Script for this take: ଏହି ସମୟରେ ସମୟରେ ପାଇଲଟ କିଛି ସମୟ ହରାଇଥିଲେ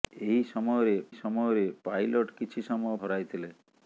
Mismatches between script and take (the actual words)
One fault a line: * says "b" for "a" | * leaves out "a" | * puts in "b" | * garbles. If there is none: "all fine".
all fine